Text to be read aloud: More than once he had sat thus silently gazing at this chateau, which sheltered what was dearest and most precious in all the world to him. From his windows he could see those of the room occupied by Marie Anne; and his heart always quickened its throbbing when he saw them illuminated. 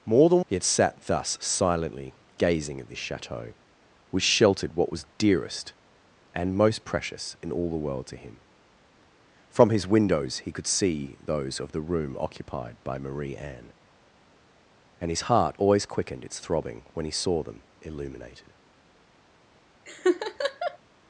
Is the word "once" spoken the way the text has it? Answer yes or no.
no